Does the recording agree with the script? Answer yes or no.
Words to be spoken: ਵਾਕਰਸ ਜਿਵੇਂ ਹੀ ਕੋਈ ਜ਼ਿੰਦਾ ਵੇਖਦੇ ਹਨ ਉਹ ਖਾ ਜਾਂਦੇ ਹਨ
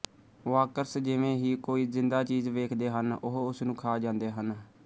no